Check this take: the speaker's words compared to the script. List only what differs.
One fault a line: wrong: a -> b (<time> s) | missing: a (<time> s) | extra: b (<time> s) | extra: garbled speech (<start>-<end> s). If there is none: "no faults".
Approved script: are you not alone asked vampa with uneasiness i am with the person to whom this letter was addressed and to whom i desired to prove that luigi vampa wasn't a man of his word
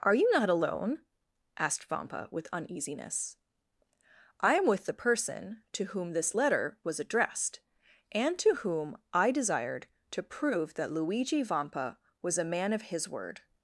wrong: wasn't -> was (12.2 s)